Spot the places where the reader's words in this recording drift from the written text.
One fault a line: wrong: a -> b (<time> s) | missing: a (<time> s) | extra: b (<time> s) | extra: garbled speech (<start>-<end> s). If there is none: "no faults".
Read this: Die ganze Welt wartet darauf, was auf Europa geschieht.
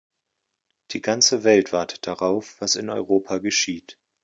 wrong: auf -> in (2.8 s)